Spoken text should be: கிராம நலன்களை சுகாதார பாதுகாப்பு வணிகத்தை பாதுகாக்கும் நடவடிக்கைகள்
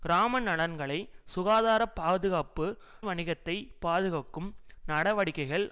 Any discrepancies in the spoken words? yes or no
no